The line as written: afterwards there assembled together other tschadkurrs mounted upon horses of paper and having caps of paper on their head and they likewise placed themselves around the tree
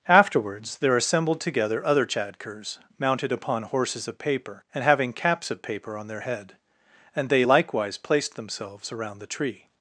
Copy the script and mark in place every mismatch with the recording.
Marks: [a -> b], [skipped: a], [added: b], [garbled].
afterwards there assembled together other tschadkurrs mounted upon horses of paper and having caps of paper on their head and they likewise placed themselves around the tree